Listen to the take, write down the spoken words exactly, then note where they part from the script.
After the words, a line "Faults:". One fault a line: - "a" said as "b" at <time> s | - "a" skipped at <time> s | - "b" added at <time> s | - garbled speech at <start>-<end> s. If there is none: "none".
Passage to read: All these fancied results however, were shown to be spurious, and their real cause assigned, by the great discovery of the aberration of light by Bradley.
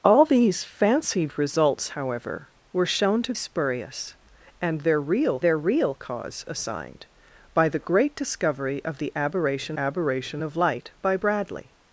All these fancied results however, were shown to spurious, and their real their real cause assigned, by the great discovery of the aberration aberration of light by Bradley.
Faults:
- "be" skipped at 3.4 s
- "their real" added at 5.4 s
- "aberration" added at 9.8 s